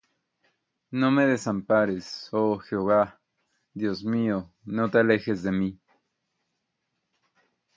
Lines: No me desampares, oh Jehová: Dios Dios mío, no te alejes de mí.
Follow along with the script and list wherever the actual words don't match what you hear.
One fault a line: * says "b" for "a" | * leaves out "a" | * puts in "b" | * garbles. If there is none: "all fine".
* leaves out "Dios"